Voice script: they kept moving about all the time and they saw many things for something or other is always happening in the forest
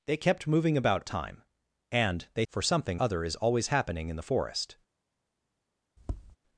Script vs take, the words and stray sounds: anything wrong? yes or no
yes